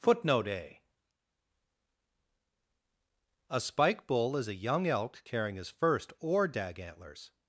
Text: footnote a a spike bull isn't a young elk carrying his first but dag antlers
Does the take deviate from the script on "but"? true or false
true